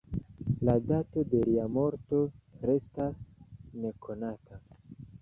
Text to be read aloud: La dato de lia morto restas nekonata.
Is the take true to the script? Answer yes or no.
yes